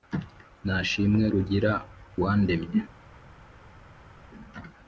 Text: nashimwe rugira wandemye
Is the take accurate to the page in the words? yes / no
yes